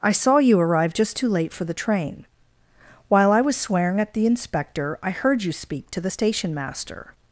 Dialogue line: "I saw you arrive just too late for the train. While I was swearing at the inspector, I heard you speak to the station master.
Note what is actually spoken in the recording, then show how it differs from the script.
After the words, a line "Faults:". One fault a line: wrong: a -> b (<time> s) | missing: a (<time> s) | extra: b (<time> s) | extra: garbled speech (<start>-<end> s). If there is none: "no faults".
"I saw you arrive just too late for the train. While I was swearing at the inspector, I heard you speak to the station master.
Faults:
no faults